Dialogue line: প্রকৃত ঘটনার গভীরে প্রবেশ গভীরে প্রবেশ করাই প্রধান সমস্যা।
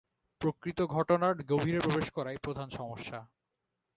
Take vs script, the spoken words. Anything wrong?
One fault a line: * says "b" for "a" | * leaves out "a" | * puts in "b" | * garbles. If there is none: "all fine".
* leaves out "গভীরে প্রবেশ"